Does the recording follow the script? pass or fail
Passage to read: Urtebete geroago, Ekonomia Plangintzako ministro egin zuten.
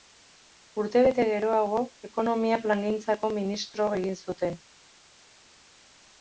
pass